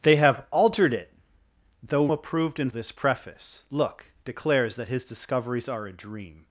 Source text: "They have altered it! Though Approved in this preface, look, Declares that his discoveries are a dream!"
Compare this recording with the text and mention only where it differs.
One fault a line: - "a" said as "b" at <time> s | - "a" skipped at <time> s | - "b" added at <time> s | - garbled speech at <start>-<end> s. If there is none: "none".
none